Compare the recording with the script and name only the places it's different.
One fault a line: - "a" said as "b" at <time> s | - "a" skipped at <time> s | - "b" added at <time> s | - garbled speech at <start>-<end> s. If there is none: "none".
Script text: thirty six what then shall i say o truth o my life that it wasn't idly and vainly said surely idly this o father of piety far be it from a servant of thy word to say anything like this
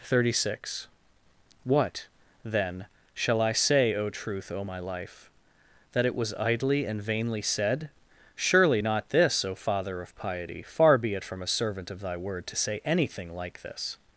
- "wasn't" said as "was" at 6.1 s
- "idly" said as "not" at 8.8 s